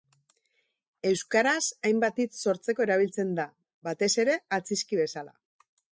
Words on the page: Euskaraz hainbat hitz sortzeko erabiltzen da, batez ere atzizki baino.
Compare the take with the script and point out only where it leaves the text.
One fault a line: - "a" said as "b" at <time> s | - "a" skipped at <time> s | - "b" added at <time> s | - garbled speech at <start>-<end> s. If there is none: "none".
- "baino" said as "bezala" at 5.0 s